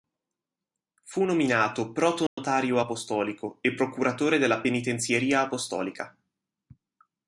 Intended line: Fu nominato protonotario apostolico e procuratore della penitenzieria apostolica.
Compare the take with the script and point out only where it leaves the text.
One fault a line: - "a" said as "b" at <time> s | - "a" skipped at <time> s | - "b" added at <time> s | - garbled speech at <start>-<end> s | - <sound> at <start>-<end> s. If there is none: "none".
- dropout at 2.3-2.4 s